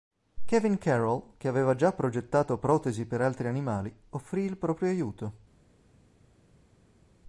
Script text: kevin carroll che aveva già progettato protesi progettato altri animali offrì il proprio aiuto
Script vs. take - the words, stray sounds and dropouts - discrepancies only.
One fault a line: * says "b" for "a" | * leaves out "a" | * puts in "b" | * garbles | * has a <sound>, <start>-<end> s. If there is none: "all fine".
* says "per" for "progettato"